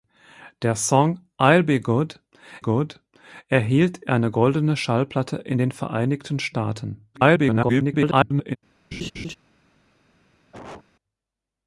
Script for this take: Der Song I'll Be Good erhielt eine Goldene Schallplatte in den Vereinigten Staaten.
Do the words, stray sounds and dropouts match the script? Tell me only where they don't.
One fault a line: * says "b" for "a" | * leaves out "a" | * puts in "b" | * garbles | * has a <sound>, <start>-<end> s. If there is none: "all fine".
* puts in "Good"
* garbles
* has a laugh, 8.9-9.3 s
* has a cough, 10.5-10.8 s